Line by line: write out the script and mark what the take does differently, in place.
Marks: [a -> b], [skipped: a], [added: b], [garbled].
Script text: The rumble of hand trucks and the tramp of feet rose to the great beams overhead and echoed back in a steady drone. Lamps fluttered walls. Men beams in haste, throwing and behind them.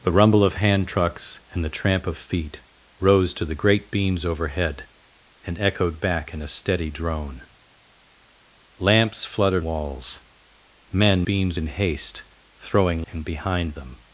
The rumble of hand trucks and the tramp of feet rose to the great beams overhead and echoed back in a steady drone. Lamps fluttered walls. Men beams in haste, throwing and behind them.